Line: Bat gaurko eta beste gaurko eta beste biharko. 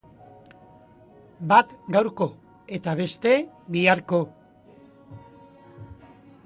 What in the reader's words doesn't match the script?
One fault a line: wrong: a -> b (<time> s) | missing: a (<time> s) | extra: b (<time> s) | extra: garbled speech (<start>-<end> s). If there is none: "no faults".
missing: gaurko eta beste (3.3 s)